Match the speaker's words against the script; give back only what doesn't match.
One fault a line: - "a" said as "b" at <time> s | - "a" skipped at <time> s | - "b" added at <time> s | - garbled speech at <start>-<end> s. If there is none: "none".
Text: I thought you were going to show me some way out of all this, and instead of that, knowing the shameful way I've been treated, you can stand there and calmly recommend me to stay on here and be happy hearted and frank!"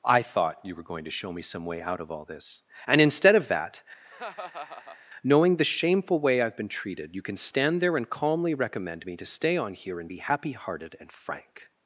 none